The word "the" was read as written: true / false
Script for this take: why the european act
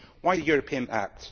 true